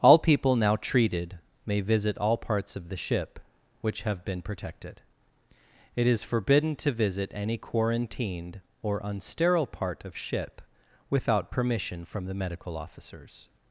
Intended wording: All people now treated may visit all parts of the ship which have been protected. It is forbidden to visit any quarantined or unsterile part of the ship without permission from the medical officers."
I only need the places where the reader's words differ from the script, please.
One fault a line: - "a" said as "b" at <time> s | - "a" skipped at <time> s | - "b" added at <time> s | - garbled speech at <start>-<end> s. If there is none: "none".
- "the" skipped at 10.2 s